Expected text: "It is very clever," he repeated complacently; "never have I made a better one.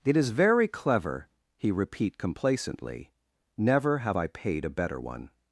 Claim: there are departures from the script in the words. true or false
true